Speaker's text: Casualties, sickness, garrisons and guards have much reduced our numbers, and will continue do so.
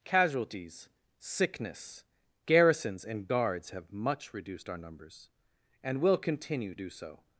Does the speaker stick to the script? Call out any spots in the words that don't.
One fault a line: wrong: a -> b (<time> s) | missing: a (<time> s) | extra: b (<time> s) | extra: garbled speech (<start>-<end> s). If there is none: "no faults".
no faults